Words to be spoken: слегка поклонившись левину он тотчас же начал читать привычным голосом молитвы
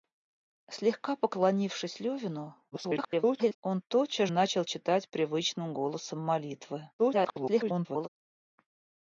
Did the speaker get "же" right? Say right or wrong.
wrong